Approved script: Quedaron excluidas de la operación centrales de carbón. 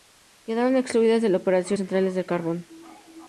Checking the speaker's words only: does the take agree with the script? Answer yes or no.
yes